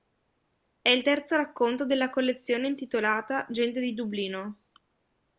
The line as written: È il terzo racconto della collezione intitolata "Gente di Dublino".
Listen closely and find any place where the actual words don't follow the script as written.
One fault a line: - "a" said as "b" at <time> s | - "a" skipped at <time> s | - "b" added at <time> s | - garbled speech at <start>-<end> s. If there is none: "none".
none